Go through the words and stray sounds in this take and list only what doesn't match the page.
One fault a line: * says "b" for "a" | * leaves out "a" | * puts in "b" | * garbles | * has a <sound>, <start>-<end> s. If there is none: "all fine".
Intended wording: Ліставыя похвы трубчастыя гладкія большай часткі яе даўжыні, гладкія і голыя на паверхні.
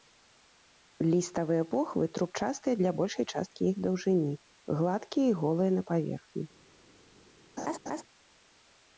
* says "для" for "гладкія"
* says "іх" for "яе"
* has a laugh, 7.6-8.0 s